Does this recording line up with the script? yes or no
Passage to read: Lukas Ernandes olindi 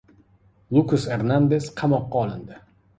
no